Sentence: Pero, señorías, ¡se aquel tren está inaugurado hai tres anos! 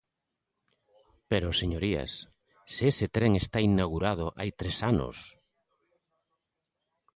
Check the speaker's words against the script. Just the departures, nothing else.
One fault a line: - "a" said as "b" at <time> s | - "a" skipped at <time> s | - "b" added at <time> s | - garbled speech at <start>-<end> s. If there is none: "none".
- "aquel" said as "ese" at 2.9 s